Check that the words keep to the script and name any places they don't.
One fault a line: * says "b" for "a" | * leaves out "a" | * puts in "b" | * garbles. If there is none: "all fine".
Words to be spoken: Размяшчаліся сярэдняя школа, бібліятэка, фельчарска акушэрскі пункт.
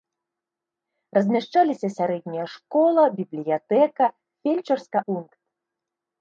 * leaves out "акушэрскі"